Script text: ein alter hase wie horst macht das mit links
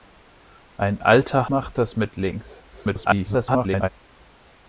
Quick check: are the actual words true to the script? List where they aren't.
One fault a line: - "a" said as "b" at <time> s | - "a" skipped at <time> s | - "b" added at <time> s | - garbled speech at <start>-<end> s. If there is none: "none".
- "hase wie horst" skipped at 1.5 s
- garbled speech at 2.7-3.9 s